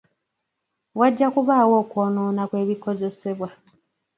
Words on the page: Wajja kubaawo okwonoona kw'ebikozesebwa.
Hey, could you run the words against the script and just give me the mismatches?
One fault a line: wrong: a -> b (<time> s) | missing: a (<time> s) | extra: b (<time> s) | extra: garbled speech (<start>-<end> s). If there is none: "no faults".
no faults